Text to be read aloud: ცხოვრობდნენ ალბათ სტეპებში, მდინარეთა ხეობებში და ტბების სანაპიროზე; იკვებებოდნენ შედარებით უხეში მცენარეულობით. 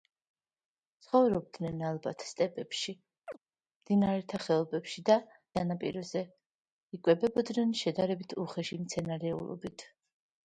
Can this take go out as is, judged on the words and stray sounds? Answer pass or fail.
fail